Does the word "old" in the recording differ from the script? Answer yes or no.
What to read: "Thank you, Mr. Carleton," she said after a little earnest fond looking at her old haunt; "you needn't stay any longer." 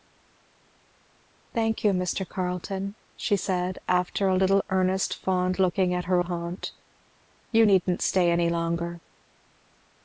yes